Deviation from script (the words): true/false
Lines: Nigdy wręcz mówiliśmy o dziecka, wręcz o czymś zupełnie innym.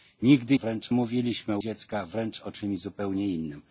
false